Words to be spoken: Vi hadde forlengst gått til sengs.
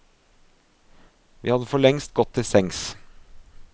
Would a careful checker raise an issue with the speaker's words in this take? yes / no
no